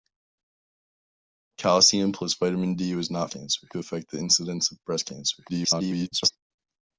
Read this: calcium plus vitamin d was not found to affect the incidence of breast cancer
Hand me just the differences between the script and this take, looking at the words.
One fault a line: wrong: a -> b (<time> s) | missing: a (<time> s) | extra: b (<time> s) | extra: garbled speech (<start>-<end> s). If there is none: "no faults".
wrong: found -> cancer (3.3 s)
extra: garbled speech (5.5-6.3 s)